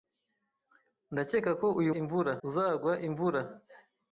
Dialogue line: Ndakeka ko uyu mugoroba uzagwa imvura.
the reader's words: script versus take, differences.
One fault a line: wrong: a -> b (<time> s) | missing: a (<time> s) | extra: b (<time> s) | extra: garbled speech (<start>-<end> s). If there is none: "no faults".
wrong: mugoroba -> imvura (2.0 s)